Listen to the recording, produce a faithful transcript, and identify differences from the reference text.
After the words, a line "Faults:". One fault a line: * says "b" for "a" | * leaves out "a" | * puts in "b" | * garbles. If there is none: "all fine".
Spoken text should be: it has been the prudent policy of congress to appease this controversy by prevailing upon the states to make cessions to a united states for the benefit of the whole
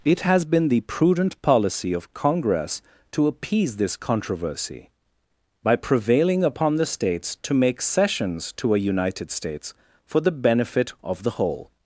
it has been the prudent policy of congress to appease this controversy by prevailing upon the states to make cessions to a united states for the benefit of the whole
Faults:
all fine